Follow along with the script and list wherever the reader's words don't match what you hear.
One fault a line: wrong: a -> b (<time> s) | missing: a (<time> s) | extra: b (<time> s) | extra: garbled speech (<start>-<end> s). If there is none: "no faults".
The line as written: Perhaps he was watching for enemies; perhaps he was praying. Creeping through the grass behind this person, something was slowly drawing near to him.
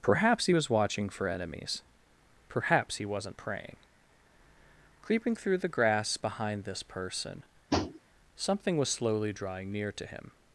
wrong: was -> wasn't (3.0 s)